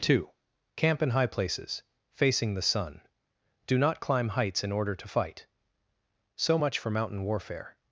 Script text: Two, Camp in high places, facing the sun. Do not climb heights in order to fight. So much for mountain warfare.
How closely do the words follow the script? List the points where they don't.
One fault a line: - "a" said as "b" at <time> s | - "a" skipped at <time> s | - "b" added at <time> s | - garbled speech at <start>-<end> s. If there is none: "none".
none